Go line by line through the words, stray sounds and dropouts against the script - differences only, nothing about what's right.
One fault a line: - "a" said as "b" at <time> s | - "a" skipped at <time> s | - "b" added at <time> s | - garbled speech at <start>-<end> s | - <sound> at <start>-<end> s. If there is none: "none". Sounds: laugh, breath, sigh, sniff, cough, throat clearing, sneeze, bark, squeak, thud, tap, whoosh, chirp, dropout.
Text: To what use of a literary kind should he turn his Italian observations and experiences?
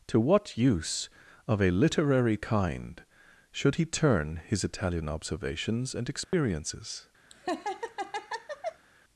- dropout at 6.2-6.3 s
- laugh at 7.3-8.9 s